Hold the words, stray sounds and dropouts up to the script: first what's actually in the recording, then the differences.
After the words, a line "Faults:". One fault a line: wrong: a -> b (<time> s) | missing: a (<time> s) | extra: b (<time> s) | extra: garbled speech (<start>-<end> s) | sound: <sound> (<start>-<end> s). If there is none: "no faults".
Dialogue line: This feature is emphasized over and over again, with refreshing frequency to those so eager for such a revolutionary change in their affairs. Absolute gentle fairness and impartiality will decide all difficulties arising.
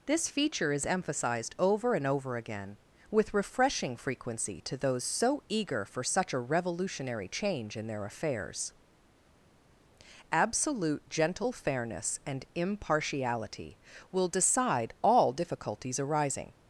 This feature is emphasized over and over again, with refreshing frequency to those so eager for such a revolutionary change in their affairs. Absolute gentle fairness and impartiality will decide all difficulties arising.
Faults:
no faults